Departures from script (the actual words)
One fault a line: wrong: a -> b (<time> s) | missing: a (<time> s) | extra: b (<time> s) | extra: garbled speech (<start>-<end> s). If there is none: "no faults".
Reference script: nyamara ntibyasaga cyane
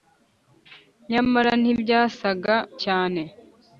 no faults